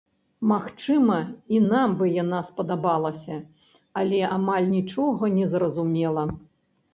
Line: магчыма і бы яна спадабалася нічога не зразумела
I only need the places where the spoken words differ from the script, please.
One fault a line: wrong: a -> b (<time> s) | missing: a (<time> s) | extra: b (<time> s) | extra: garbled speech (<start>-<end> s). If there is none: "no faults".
extra: нам (1.7 s)
extra: але амаль (4.0 s)